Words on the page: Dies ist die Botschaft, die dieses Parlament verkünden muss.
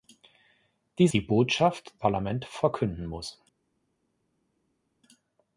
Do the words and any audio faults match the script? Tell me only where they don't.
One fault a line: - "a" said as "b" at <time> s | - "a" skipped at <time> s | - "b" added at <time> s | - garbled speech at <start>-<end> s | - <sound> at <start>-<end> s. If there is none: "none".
- "ist" skipped at 1.1 s
- "die dieses" skipped at 1.9 s